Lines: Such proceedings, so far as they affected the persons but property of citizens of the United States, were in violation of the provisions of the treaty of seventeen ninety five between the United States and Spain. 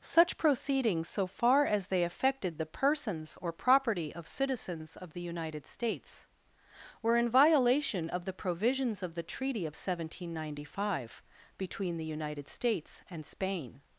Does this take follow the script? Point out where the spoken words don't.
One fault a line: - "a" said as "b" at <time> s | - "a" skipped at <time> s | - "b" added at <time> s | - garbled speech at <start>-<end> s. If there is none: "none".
- "but" said as "or" at 3.4 s